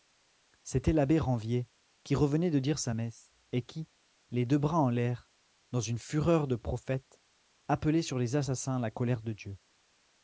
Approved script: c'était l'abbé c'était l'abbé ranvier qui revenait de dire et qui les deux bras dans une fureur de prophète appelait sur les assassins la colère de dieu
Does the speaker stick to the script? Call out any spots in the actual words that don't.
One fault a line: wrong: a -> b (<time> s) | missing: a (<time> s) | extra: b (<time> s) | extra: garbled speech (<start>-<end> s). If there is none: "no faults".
missing: c'était l'abbé (1.2 s)
extra: sa messe (2.8 s)
extra: en l'air (4.8 s)